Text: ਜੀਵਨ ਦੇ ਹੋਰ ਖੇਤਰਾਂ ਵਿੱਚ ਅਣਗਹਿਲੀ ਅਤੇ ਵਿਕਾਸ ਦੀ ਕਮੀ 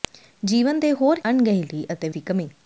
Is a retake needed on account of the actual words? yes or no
yes